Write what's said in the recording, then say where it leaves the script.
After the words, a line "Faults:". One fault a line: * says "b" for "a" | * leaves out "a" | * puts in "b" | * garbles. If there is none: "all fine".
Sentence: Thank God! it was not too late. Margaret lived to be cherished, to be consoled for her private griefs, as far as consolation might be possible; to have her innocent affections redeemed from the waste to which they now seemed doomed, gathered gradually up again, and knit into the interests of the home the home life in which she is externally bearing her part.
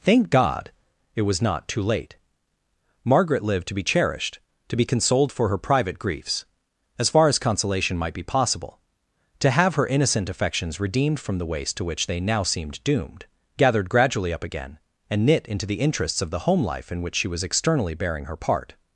Thank God! it was not too late. Margaret lived to be cherished, to be consoled for her private griefs, as far as consolation might be possible; to have her innocent affections redeemed from the waste to which they now seemed doomed, gathered gradually up again, and knit into the interests of the home life in which she was externally bearing her part.
Faults:
* leaves out "the home"
* says "was" for "is"